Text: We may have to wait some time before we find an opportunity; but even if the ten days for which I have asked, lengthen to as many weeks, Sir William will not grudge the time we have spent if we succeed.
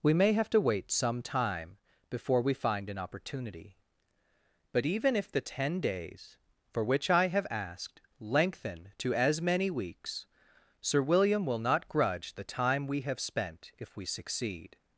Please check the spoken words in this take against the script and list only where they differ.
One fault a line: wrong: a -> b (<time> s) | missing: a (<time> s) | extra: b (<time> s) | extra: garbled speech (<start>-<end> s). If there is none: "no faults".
no faults